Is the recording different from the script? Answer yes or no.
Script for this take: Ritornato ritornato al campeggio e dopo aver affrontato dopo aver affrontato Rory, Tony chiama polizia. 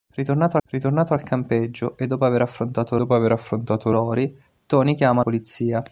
no